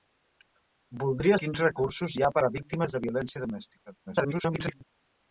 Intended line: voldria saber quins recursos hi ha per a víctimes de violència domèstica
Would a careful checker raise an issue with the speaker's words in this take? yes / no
yes